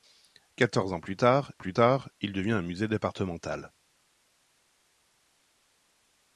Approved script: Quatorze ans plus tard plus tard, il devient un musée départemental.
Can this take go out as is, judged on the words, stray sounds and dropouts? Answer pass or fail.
pass